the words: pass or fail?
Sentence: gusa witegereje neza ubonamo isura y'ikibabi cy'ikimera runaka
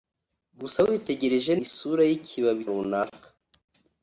fail